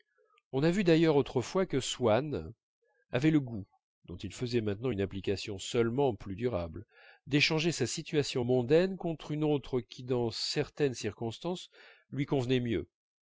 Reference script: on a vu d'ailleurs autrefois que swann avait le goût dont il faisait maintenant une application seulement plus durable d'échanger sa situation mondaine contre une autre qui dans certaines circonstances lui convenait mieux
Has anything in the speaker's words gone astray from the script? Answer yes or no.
no